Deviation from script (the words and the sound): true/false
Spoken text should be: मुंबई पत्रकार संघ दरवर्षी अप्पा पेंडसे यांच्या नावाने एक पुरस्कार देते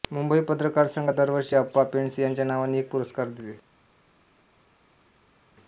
false